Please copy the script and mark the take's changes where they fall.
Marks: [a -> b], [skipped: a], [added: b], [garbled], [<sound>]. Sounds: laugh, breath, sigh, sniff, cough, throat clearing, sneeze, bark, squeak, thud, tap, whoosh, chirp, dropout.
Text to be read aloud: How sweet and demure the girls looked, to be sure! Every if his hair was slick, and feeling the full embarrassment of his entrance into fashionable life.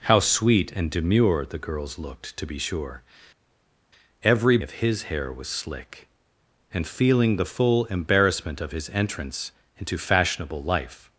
How sweet and demure the girls looked, to be sure! Every if his hair was slick, and feeling the full embarrassment of his entrance into fashionable life.